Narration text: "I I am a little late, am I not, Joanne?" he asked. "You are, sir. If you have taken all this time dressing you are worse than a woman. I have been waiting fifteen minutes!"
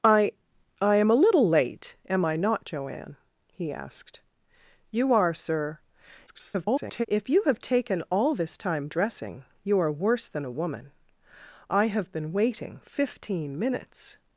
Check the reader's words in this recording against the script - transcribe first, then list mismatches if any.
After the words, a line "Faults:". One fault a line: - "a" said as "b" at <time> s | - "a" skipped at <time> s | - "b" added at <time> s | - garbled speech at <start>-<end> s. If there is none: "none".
"I I am a little late, am I not, Joanne?" he asked. "You are, sir. [garbled] If you have taken all this time dressing you are worse than a woman. I have been waiting fifteen minutes!"
Faults:
- garbled speech at 6.3-7.1 s